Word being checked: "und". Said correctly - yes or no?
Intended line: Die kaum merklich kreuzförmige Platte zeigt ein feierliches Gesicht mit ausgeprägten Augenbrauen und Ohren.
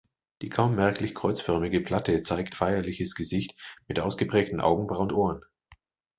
no